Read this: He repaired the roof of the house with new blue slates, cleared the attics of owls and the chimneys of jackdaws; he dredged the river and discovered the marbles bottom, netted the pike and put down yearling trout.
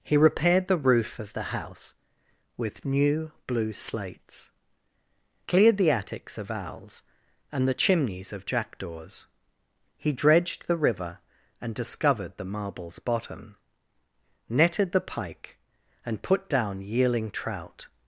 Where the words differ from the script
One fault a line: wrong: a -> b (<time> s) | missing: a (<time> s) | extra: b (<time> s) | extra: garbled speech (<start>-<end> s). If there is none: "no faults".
no faults